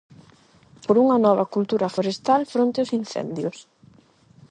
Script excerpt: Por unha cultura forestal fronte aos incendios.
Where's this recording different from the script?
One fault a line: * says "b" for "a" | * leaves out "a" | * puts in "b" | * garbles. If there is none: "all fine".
* puts in "nova"